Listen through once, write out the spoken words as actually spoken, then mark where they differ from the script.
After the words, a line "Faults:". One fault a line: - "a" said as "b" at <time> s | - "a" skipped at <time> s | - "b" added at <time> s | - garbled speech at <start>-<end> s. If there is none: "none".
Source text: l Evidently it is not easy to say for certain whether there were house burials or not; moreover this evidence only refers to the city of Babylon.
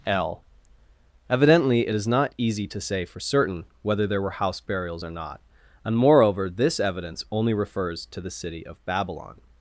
l Evidently it is not easy to say for certain whether there were house burials or not; and moreover this evidence only refers to the city of Babylon.
Faults:
- "and" added at 5.8 s